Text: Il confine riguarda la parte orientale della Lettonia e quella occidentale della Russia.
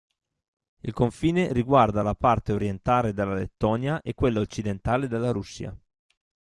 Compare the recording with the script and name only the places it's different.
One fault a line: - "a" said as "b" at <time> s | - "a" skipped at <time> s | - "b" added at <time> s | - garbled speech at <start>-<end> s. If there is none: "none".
none